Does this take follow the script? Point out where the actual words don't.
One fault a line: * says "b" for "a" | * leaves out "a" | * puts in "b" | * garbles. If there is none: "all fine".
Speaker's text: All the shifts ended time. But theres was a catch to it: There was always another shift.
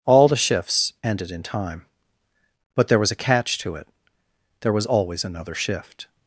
* puts in "in"
* says "there" for "theres"